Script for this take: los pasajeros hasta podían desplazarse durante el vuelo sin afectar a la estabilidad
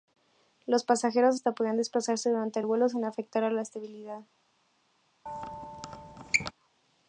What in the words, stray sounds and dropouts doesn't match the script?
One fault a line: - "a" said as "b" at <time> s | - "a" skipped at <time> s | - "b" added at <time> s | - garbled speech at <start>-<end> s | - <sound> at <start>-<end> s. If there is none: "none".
- squeak at 5.3-6.5 s